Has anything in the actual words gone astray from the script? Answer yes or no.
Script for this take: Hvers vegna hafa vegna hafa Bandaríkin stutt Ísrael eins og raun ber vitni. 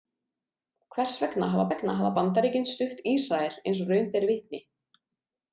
no